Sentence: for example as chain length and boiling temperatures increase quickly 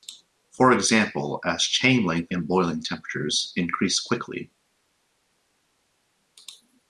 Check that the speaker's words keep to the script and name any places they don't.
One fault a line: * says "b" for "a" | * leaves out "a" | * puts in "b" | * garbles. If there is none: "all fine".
all fine